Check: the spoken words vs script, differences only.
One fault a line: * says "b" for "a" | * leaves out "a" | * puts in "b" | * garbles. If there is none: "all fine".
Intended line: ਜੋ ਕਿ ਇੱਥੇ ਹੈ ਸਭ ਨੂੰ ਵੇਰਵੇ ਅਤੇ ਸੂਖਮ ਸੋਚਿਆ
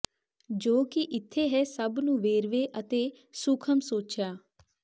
all fine